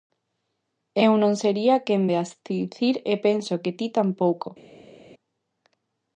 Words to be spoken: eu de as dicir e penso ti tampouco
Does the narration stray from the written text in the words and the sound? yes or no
yes